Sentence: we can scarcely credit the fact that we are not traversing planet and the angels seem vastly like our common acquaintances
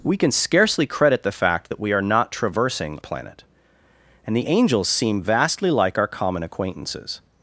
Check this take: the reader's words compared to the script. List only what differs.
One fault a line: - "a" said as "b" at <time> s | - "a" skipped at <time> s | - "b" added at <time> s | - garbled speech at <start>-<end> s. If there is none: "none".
none